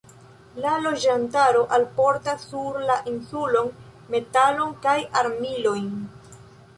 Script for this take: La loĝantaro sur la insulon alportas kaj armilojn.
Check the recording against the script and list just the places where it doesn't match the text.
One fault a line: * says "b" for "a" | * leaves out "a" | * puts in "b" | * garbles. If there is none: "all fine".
* puts in "alportas"
* says "metalon" for "alportas"